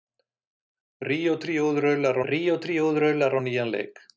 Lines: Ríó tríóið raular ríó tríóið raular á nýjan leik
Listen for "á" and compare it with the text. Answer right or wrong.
right